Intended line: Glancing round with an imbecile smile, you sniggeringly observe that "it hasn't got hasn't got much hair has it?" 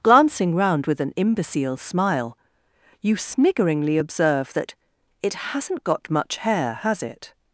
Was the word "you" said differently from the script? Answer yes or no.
no